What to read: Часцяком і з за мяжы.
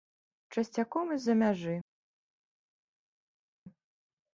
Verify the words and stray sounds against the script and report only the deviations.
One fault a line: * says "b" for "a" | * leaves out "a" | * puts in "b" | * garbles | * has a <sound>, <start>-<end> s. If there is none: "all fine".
all fine